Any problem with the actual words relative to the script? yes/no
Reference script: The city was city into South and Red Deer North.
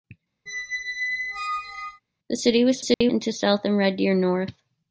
no